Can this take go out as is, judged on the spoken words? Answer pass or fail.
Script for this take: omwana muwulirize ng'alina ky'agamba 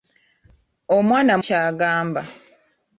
fail